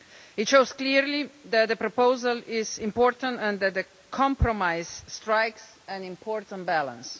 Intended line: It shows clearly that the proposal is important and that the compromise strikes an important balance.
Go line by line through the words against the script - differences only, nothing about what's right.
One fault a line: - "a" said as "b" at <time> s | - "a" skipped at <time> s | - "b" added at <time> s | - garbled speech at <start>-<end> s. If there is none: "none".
none